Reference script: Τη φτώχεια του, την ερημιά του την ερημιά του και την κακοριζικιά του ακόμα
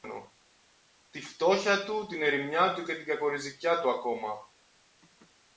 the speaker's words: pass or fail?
fail